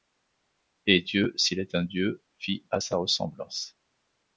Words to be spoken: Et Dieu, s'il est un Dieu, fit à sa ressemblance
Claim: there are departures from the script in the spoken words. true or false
false